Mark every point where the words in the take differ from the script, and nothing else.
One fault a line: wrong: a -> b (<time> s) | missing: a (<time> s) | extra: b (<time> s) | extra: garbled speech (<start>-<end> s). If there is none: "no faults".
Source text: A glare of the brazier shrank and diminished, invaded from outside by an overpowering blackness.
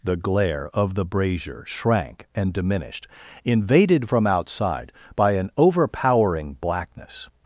wrong: A -> The (0.0 s)